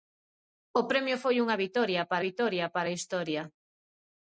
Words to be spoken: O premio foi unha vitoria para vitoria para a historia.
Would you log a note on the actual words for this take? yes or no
no